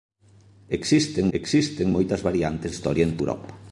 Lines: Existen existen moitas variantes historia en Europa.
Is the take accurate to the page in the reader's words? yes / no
yes